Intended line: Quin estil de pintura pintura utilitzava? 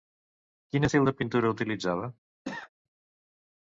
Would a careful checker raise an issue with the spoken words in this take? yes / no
yes